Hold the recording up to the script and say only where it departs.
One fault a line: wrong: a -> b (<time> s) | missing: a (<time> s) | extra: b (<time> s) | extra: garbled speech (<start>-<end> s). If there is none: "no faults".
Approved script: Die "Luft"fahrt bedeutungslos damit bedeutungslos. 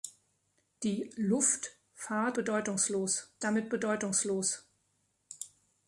no faults